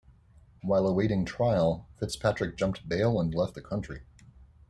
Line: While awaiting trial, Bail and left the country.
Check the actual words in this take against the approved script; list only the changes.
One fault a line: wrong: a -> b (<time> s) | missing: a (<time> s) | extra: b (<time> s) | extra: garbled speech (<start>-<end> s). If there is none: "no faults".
extra: Fitzpatrick jumped (2.0 s)